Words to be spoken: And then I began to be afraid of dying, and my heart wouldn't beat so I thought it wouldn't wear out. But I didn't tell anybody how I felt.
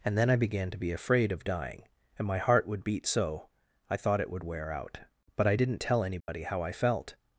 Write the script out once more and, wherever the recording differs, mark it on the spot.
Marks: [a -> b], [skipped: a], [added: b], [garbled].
And then I began to be afraid of dying, and my heart [wouldn't -> would] beat so I thought it [wouldn't -> would] wear out. But I didn't tell anybody how I felt.